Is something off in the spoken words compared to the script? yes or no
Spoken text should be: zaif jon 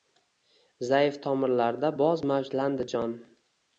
yes